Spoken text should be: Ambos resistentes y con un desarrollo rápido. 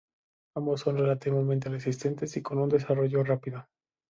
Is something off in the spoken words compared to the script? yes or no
yes